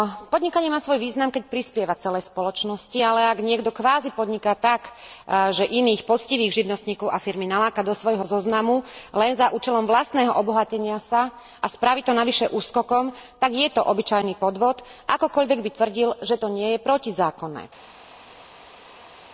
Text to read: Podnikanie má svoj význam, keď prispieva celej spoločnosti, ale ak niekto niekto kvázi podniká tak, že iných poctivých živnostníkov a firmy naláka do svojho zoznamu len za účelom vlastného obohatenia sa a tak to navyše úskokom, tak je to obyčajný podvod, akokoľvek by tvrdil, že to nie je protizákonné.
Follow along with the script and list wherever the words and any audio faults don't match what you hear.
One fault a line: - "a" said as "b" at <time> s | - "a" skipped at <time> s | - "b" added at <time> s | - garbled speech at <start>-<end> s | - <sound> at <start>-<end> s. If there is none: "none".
- "niekto" skipped at 3.7 s
- "tak" said as "spraví" at 11.7 s